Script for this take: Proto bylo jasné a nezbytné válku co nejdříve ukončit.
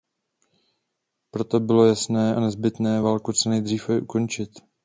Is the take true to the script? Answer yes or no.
yes